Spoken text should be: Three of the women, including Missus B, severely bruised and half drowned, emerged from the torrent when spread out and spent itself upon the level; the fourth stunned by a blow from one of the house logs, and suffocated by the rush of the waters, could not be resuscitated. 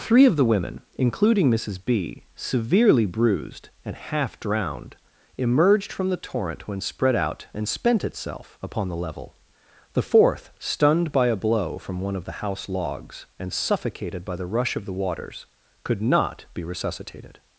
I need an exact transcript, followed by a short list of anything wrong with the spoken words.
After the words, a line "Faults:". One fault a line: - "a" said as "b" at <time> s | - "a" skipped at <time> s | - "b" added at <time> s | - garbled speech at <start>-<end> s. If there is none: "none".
Three of the women, including Missus B, severely bruised and half drowned, emerged from the torrent when spread out and spent itself upon the level; the fourth stunned by a blow from one of the house logs, and suffocated by the rush of the waters, could not be resuscitated.
Faults:
none